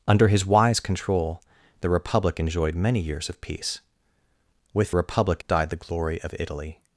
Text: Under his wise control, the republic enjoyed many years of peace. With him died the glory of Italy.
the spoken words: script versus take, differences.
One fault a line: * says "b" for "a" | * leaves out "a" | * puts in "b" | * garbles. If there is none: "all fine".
* says "republic" for "him"